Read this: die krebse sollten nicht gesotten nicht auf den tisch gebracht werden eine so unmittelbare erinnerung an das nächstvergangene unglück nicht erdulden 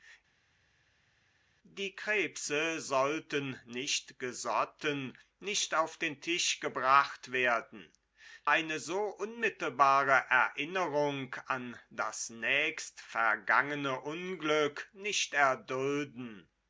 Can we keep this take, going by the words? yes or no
yes